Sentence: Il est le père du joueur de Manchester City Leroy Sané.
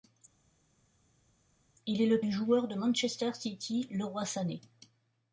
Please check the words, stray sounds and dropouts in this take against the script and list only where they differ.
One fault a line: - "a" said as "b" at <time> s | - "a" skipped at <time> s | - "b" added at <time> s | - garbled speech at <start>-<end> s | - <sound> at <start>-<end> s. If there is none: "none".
- "père" skipped at 2.2 s